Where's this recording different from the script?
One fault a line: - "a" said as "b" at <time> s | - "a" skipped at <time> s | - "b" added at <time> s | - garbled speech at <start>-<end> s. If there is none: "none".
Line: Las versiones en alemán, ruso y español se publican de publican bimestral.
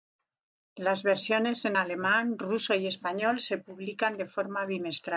- "publican" said as "forma" at 4.3 s